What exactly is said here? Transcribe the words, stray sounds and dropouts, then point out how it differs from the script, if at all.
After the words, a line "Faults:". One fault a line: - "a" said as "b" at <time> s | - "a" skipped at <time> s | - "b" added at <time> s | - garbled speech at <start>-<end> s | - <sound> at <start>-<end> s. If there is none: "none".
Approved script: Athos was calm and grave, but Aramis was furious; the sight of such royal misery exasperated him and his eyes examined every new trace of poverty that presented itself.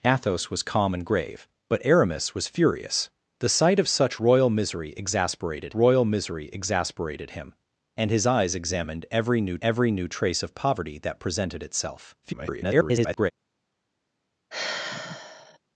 Athos was calm and grave, but Aramis was furious; the sight of such royal misery exasperated royal misery exasperated him and his eyes examined every new every new trace of poverty that presented itself. [garbled]
Faults:
- "royal misery exasperated" added at 5.7 s
- "every new" added at 9.6 s
- garbled speech at 12.2-13.3 s
- sigh at 14.5-15.6 s